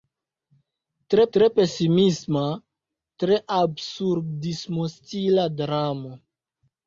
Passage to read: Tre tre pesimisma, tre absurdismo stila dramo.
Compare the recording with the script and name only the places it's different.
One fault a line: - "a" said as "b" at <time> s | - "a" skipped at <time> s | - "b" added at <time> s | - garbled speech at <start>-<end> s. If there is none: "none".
none